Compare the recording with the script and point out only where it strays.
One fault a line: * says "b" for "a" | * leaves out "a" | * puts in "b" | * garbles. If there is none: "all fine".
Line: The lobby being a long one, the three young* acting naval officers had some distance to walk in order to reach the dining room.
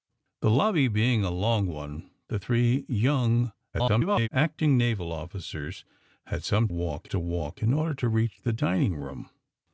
* garbles
* says "walk" for "distance"